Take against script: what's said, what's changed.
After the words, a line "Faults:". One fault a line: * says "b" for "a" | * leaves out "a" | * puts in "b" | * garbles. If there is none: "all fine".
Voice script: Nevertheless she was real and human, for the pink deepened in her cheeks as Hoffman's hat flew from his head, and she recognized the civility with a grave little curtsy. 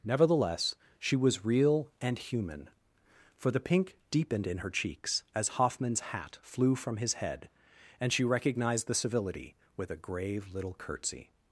Nevertheless she was real and human, for the pink deepened in her cheeks as Hoffman's hat flew from his head, and she recognized the civility with a grave little curtsy.
Faults:
all fine